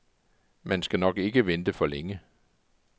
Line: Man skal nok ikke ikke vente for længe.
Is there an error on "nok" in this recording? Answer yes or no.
no